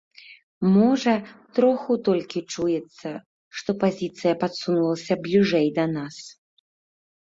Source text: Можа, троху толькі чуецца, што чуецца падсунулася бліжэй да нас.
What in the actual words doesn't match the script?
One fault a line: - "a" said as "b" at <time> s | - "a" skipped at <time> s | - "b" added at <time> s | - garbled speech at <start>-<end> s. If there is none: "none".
- "чуецца" said as "пазіцыя" at 3.8 s